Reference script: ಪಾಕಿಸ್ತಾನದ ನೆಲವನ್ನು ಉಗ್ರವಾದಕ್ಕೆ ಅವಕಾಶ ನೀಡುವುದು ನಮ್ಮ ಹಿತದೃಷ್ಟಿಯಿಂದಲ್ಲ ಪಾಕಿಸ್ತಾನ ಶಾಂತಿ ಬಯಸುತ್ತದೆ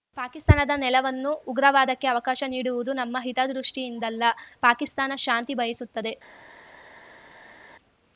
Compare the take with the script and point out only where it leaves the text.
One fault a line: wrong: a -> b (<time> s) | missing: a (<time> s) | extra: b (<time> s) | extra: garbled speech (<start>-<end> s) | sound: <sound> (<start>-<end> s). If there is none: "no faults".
no faults